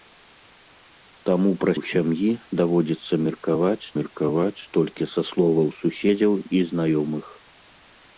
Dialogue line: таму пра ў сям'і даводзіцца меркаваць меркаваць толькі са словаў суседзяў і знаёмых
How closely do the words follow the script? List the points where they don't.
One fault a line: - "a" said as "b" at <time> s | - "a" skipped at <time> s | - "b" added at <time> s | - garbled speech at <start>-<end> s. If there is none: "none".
none